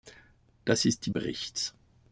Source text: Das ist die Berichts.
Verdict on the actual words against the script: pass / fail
pass